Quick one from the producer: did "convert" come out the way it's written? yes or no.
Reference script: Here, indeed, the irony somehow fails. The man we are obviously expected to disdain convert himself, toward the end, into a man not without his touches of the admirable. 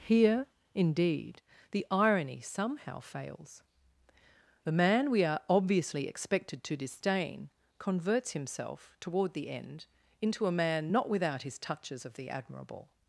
no